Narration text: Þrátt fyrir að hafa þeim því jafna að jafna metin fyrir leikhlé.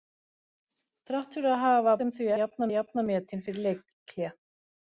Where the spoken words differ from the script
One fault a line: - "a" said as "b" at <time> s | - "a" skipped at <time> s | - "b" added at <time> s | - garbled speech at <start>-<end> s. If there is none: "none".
none